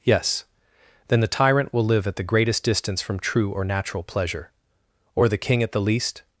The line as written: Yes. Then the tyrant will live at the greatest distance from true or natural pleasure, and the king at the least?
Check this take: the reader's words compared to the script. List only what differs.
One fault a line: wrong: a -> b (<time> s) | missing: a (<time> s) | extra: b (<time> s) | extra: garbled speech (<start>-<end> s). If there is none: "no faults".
wrong: and -> or (5.2 s)